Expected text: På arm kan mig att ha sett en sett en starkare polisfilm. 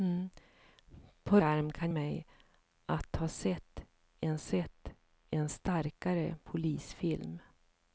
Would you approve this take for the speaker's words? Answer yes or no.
yes